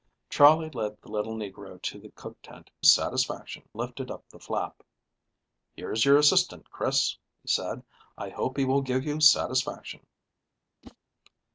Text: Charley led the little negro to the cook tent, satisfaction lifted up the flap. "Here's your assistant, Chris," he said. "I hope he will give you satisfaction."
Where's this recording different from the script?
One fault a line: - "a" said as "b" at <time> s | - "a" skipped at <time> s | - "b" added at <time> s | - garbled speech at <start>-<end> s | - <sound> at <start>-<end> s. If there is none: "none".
- whoosh at 10.8-11.0 s